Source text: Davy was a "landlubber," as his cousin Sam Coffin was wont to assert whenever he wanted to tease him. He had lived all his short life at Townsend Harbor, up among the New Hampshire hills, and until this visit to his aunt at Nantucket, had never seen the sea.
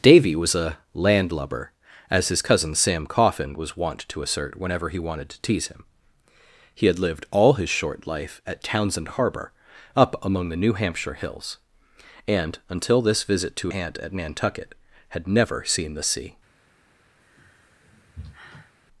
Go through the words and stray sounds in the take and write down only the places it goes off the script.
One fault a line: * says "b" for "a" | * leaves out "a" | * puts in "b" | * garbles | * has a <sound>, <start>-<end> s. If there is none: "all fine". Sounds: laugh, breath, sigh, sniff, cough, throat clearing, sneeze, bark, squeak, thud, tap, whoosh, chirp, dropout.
* leaves out "his"
* has a sigh, 17.2-18.7 s